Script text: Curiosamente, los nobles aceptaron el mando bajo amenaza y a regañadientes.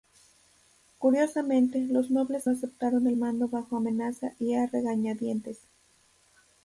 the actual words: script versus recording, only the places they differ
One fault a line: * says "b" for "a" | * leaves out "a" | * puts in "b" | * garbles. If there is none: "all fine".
all fine